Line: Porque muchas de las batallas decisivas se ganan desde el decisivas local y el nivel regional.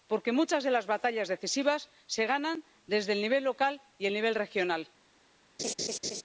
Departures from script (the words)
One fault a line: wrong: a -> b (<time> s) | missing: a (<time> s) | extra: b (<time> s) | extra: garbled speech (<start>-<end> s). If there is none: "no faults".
wrong: decisivas -> nivel (3.2 s)